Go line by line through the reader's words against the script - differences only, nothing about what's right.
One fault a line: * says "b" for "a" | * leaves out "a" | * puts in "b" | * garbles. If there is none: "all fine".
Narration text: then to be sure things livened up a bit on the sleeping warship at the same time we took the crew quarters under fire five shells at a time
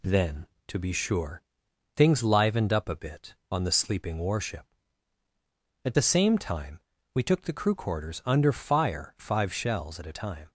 all fine